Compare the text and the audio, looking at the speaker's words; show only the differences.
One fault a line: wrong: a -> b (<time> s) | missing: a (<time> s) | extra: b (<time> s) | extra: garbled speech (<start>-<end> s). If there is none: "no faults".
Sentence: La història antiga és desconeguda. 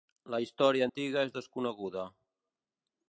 no faults